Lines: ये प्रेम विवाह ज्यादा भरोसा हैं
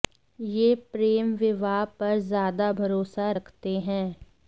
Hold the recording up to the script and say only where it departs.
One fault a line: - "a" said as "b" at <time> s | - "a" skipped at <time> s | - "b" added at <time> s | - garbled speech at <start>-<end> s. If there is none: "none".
- "पर" added at 2.0 s
- "रखते" added at 3.4 s